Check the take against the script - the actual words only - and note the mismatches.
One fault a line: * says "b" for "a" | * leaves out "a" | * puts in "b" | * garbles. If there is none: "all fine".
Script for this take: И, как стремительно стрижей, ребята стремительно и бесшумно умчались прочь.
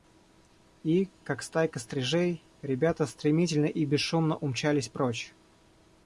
* says "стайка" for "стремительно"